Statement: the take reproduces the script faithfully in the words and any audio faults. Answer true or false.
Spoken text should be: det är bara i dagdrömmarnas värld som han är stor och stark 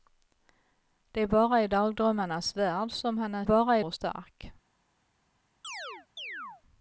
false